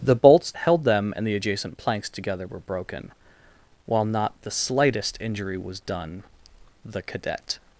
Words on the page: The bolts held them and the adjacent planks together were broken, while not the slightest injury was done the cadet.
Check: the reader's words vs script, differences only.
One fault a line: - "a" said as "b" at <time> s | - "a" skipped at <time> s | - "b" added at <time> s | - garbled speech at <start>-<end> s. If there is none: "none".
none